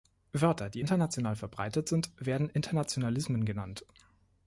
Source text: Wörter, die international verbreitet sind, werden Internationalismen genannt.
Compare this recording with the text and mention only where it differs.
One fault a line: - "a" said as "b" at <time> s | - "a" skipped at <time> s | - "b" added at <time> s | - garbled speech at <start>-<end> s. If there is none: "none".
none